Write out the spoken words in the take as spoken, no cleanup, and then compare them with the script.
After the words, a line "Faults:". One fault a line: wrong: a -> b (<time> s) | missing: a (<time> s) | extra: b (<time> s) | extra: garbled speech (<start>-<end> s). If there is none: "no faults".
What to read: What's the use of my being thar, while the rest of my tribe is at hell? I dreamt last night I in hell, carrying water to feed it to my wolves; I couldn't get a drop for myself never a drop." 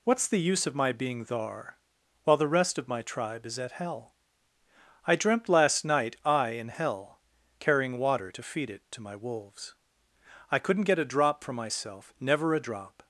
What's the use of my being thar, while the rest of my tribe is at hell? I dreamt last night I in hell, carrying water to feed it to my wolves; I couldn't get a drop for myself never a drop."
Faults:
no faults